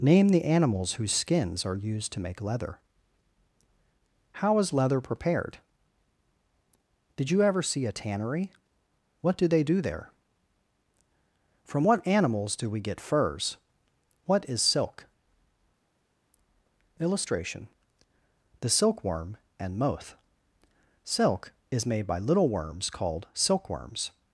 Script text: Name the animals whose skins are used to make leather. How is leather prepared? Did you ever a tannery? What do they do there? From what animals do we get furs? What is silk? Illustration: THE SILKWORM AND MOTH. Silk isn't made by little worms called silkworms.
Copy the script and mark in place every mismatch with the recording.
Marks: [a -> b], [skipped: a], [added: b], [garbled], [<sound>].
Name the animals whose skins are used to make leather. How is leather prepared? Did you ever [added: see] a tannery? What do they do there? From what animals do we get furs? What is silk? Illustration: THE SILKWORM AND MOTH. Silk [isn't -> is] made by little worms called silkworms.